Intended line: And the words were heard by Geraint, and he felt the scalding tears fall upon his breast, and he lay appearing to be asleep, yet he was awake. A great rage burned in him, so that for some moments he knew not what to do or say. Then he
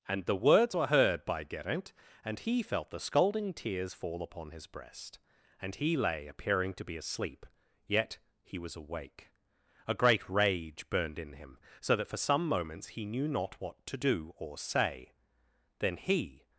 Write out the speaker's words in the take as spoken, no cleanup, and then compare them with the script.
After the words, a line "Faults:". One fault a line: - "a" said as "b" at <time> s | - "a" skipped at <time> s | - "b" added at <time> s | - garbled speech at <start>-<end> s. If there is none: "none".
And the words were heard by Geraint, and he felt the scalding tears fall upon his breast, and he lay appearing to be asleep, yet he was awake. A great rage burned in him, so that for some moments he knew not what to do or say. Then he
Faults:
none